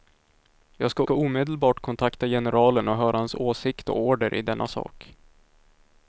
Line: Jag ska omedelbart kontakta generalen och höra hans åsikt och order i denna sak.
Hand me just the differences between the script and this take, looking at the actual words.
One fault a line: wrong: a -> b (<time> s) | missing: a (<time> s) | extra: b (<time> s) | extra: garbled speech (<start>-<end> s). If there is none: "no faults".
extra: ska (1.0 s)